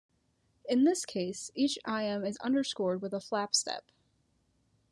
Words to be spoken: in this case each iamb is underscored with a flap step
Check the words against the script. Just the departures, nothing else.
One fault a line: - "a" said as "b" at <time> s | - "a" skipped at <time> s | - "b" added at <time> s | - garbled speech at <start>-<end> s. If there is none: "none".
none